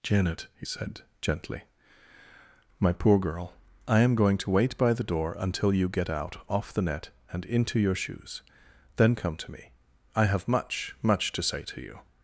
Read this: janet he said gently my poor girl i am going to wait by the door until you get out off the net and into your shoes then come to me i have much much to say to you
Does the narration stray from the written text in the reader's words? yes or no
no